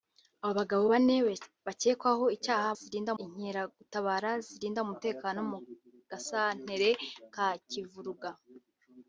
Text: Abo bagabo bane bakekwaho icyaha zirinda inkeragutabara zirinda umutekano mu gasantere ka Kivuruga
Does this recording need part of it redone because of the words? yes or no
no